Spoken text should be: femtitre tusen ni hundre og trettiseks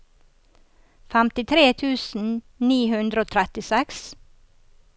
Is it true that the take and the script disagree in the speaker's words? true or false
false